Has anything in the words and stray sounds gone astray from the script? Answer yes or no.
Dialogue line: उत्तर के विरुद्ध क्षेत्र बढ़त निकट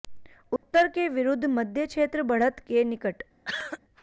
yes